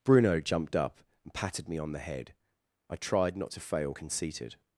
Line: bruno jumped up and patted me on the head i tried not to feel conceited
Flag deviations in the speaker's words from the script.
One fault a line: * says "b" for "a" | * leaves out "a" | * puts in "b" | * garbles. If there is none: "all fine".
* says "fail" for "feel"